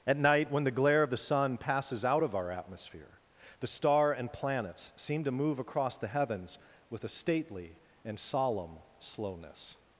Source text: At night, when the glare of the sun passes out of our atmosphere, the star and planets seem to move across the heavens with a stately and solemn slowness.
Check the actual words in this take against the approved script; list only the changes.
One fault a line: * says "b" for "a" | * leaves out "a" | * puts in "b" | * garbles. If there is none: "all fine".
all fine